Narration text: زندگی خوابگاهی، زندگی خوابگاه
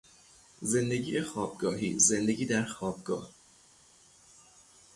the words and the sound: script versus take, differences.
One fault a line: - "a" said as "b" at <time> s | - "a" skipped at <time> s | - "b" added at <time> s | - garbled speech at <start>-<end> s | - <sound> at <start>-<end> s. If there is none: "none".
- "در" added at 2.4 s